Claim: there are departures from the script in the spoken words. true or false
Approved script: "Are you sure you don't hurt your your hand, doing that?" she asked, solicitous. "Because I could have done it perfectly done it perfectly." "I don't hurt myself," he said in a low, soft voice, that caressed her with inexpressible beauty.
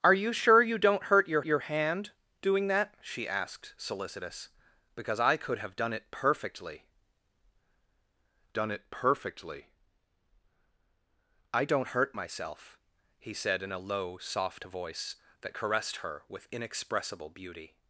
false